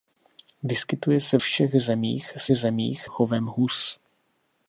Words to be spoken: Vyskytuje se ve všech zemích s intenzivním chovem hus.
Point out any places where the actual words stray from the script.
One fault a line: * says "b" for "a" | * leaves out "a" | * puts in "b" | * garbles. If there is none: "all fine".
* leaves out "ve"
* says "zemích" for "intenzivním"